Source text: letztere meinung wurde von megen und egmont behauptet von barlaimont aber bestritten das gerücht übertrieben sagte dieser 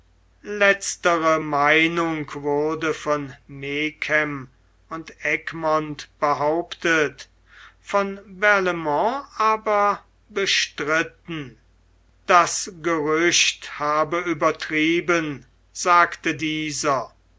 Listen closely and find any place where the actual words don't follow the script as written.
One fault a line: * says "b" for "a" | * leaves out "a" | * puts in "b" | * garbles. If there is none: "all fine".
* puts in "habe"